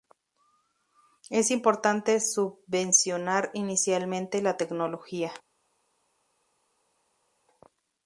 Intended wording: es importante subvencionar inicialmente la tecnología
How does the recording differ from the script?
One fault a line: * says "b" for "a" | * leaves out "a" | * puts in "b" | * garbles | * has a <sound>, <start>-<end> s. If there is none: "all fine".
all fine